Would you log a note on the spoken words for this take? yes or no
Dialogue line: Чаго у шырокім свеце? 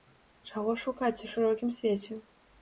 yes